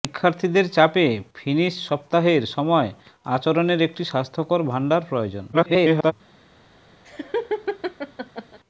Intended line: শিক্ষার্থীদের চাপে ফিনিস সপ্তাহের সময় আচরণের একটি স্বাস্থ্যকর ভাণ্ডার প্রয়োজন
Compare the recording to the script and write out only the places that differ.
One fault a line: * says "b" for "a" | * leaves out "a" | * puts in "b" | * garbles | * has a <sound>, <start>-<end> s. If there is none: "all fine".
* garbles
* has a laugh, 7.0-8.6 s